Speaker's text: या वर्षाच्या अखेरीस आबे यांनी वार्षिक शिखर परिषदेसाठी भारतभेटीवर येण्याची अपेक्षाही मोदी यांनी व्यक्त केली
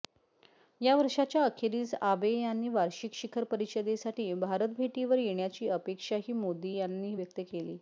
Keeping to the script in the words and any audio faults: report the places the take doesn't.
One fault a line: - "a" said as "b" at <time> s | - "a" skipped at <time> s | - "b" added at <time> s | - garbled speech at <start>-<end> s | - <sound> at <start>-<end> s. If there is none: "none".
none